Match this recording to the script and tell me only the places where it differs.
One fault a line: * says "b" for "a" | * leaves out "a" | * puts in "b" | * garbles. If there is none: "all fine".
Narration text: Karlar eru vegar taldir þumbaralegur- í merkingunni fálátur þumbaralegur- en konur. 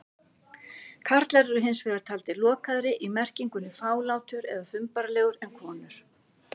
* puts in "hins"
* says "lokaðri" for "þumbaralegur"
* puts in "eða"